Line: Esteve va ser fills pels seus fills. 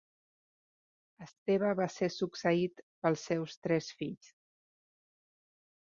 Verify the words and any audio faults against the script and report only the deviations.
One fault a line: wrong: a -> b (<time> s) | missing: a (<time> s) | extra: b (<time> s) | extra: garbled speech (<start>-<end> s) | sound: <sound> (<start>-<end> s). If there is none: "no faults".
wrong: fills -> succeït (2.1 s)
extra: tres (3.7 s)